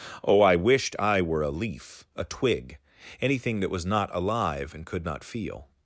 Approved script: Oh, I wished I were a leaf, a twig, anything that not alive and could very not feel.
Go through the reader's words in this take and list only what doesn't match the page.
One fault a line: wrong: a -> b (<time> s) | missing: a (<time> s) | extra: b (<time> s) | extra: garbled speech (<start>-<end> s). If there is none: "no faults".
extra: was (3.7 s)
missing: very (5.0 s)